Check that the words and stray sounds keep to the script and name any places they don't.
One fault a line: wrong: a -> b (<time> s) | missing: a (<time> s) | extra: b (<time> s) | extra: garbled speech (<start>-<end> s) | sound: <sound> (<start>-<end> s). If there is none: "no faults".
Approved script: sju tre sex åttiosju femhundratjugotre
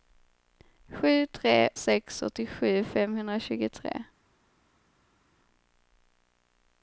no faults